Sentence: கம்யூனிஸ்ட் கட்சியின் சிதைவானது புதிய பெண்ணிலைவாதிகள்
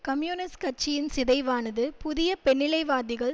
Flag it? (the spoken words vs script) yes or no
no